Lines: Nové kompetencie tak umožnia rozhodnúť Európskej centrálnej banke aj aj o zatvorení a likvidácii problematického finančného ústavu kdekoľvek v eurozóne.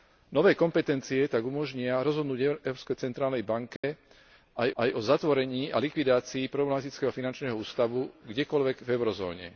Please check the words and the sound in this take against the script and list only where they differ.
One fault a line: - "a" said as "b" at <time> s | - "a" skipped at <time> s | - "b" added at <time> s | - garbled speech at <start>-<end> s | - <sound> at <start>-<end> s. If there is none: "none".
- dropout at 3.8-3.8 s